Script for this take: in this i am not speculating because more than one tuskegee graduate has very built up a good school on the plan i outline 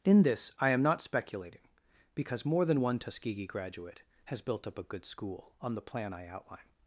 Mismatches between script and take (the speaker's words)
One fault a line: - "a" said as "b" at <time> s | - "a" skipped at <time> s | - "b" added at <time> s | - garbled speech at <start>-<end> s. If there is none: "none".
- "very" skipped at 4.4 s